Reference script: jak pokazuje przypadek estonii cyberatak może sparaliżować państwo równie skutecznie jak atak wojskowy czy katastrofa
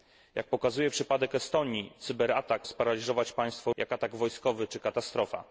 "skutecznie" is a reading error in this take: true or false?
true